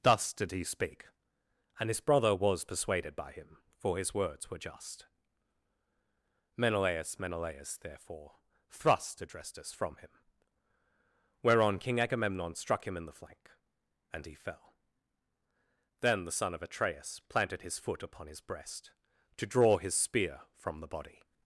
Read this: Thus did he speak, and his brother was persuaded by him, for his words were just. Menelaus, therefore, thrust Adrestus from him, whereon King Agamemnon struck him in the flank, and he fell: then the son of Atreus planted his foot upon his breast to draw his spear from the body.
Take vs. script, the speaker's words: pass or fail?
fail